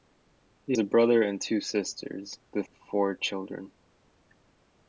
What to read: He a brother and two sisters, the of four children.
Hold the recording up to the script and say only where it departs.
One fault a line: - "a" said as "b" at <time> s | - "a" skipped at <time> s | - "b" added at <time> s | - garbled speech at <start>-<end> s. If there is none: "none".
none